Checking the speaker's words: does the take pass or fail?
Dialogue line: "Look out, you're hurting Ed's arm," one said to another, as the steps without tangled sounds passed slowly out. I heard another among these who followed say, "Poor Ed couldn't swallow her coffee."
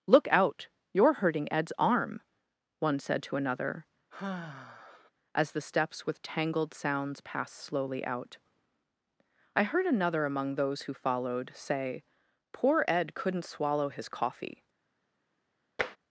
fail